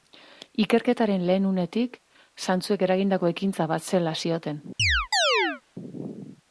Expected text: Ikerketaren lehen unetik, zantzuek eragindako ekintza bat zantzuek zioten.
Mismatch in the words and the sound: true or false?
true